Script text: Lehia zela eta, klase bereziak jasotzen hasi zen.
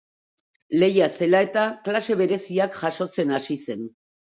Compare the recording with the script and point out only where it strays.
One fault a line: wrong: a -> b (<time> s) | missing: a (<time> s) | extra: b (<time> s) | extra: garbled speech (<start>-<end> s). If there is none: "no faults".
no faults